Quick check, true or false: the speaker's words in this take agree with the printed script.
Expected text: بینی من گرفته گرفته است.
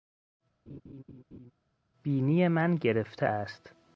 false